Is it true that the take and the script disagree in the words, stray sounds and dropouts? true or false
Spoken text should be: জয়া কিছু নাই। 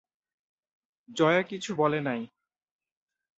true